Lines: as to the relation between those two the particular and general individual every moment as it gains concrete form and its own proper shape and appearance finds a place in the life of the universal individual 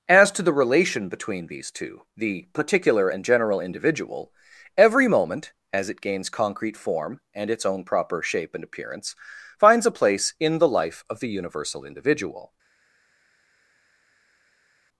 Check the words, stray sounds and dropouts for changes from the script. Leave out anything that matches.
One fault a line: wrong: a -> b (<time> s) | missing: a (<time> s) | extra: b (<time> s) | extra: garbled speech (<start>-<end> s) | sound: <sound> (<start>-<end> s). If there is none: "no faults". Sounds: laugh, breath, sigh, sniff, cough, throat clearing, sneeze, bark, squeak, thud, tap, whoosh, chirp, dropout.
wrong: those -> these (1.5 s)